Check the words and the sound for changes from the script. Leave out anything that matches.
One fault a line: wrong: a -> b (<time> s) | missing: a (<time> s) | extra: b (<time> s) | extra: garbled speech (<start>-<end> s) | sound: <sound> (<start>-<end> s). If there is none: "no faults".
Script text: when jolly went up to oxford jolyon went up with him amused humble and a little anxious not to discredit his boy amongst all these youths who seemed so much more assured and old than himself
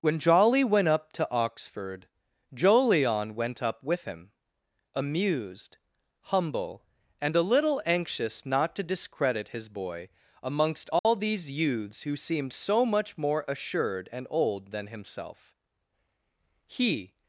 sound: dropout (11.0-11.0 s)
extra: he (16.7 s)